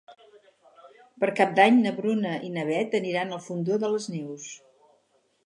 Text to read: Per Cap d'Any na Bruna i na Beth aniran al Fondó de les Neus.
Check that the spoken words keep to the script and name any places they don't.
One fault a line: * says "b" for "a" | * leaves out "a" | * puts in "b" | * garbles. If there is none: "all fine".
all fine